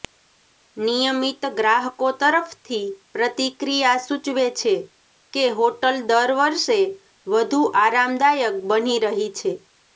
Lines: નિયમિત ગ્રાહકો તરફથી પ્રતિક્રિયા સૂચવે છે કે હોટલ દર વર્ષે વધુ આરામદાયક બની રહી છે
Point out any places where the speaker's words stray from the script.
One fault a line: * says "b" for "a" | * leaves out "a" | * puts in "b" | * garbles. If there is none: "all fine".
all fine